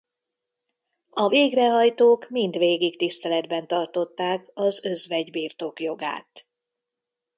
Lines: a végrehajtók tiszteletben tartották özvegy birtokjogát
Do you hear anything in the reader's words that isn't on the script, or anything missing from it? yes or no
yes